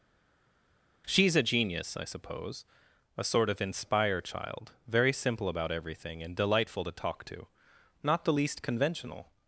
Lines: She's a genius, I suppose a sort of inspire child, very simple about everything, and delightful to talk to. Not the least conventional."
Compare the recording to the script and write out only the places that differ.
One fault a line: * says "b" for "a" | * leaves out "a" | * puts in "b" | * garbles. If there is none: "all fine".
all fine